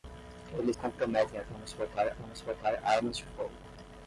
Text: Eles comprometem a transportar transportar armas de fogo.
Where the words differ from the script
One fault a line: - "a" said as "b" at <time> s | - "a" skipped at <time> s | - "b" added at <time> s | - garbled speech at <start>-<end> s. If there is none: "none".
none